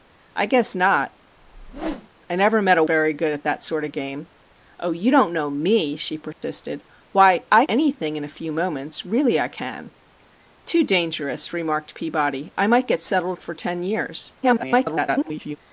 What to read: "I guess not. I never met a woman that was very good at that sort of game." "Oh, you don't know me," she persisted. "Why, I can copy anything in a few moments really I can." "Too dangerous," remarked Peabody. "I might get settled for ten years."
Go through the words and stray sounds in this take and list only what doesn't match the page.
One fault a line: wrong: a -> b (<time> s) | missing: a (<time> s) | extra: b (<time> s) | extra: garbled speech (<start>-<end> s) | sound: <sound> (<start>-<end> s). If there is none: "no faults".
sound: whoosh (1.4-2.1 s)
missing: woman that was (2.8 s)
sound: dropout (6.3-6.4 s)
missing: can copy (7.6 s)
extra: garbled speech (14.4-15.6 s)